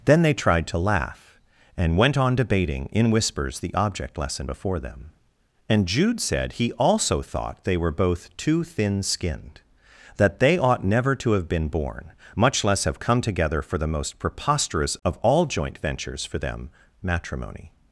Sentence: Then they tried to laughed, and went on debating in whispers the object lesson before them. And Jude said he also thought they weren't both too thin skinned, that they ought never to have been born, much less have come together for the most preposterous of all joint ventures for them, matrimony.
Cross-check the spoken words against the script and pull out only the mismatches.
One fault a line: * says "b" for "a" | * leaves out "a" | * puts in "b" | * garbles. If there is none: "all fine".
* says "laugh" for "laughed"
* says "were" for "weren't"